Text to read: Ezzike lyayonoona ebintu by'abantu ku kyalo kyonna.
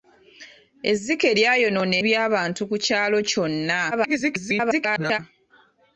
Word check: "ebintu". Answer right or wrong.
wrong